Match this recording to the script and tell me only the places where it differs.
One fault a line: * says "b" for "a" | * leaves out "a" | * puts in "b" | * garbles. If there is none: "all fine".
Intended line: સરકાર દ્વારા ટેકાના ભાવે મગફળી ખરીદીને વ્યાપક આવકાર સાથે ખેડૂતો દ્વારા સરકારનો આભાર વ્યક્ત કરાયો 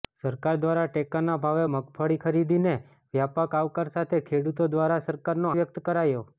* leaves out "આભાર"